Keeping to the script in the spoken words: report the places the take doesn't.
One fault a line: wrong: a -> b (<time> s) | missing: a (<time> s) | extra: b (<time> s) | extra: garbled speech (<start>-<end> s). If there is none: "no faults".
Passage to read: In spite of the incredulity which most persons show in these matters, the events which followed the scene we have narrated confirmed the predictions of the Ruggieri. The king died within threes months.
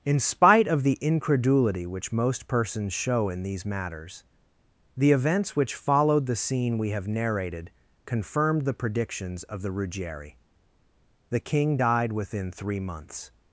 wrong: threes -> three (12.5 s)